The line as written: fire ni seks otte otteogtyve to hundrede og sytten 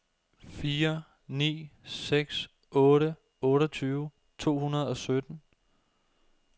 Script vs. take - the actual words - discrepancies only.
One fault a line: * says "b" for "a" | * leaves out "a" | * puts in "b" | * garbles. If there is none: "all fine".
all fine